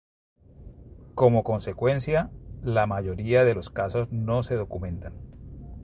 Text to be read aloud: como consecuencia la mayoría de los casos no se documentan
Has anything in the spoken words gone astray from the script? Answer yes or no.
no